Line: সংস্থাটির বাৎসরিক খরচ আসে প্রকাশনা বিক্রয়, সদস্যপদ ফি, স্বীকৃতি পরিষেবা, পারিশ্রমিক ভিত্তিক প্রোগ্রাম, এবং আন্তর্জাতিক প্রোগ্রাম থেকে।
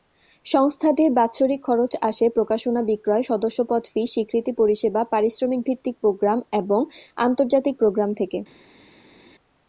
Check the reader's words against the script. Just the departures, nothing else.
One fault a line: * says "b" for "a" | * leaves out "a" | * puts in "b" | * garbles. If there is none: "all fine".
all fine